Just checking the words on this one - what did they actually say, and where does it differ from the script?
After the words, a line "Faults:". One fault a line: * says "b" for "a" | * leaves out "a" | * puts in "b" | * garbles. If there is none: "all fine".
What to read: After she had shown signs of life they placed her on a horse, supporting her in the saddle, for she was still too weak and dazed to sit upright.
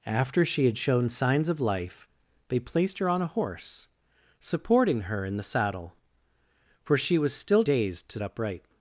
After she had shown signs of life they placed her on a horse, supporting her in the saddle, for she was still dazed to upright.
Faults:
* leaves out "too weak and"
* leaves out "sit"